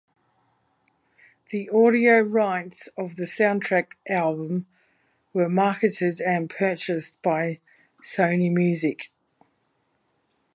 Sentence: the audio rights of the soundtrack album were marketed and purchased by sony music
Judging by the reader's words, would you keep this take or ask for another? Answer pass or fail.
pass